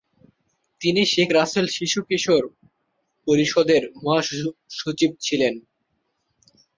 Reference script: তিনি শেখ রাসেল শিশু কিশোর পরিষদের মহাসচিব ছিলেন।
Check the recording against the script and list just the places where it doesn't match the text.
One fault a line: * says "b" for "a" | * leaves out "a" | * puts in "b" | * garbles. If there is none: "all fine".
all fine